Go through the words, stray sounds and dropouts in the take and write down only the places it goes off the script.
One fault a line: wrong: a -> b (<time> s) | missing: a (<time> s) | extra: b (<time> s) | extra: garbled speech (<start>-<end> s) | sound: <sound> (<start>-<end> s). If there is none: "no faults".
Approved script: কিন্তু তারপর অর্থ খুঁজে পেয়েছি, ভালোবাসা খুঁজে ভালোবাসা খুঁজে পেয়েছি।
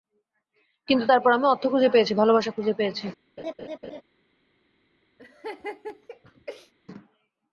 extra: আমি (1.3 s)
missing: ভালোবাসা খুঁজে (2.7 s)
sound: laugh (3.4-4.0 s)
sound: laugh (5.2-6.7 s)